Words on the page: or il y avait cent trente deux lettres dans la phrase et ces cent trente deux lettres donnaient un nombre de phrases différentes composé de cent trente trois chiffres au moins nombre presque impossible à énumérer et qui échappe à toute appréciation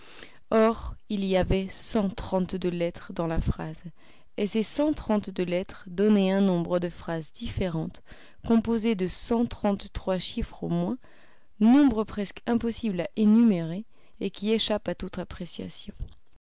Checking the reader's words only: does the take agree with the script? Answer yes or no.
yes